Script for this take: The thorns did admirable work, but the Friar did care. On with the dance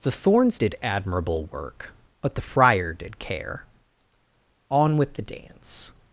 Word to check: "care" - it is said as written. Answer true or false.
true